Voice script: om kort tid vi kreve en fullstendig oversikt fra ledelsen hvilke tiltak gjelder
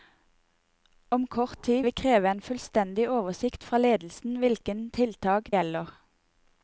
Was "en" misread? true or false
false